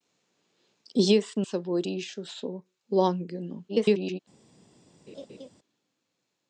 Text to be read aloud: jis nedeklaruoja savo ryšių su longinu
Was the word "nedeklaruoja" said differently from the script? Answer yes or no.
yes